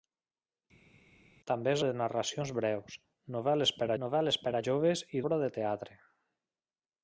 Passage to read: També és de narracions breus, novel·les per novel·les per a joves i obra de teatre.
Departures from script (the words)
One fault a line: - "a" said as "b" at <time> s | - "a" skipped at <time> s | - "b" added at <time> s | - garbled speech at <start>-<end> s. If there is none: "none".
none